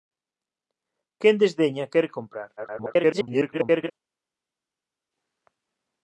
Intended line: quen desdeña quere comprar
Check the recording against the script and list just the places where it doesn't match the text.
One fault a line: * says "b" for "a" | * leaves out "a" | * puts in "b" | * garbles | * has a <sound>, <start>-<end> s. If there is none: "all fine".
* garbles